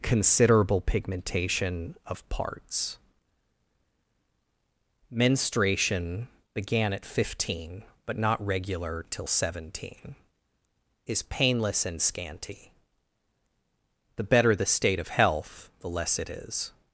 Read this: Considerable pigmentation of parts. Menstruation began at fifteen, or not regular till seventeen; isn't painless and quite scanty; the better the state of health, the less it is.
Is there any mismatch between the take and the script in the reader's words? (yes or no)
yes